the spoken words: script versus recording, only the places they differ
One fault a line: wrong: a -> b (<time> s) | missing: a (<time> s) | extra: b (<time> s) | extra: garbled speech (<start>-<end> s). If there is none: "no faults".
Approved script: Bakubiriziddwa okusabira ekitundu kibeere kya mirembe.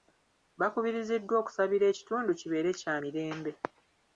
no faults